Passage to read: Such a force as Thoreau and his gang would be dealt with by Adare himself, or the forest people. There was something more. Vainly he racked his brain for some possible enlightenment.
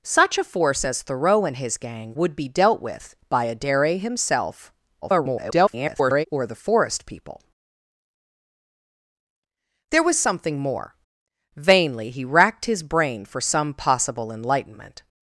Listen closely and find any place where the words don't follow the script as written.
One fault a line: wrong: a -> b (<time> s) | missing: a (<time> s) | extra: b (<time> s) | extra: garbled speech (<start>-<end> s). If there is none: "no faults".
extra: garbled speech (5.0-6.3 s)